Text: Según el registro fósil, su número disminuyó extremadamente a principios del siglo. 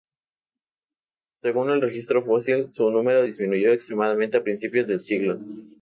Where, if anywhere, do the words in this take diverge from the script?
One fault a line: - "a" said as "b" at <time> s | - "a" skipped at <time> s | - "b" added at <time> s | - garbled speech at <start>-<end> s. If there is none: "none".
none